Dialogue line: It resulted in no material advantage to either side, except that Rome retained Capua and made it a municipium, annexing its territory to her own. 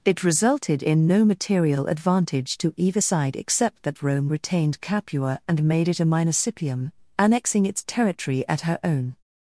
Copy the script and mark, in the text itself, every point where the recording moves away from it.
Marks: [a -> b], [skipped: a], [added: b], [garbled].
It resulted in no material advantage to either side, except that Rome retained Capua and made it a municipium, annexing its territory [to -> at] her own.